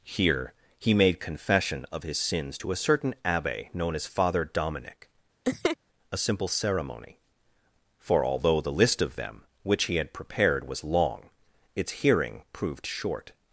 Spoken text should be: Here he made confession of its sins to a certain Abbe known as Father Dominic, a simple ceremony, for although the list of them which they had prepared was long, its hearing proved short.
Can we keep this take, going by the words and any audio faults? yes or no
no